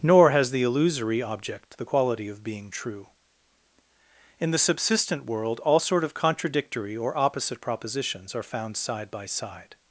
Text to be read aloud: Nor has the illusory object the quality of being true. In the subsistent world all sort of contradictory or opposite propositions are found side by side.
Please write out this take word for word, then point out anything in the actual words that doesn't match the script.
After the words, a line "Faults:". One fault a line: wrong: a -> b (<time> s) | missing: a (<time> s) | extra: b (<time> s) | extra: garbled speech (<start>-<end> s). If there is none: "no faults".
Nor has the illusory object the quality of being true. In the subsistent world all sort of contradictory or opposite propositions are found side by side.
Faults:
no faults